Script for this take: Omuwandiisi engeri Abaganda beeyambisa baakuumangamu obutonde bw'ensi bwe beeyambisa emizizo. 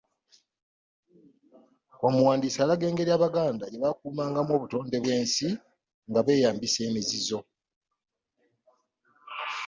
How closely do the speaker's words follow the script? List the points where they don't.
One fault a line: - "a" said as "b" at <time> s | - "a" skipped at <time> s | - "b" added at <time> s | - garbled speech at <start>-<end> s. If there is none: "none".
- "alaga" added at 2.6 s
- "beeyambisa" said as "gye" at 3.7 s
- "bwe" said as "nga" at 6.1 s